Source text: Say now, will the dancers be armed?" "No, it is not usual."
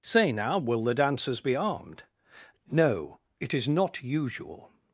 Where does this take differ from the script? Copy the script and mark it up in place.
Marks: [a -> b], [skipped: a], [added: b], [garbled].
Say now, will the dancers be armed?" "No, it is not usual."